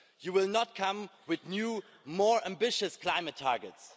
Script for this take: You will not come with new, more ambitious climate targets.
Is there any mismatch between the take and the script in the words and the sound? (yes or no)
no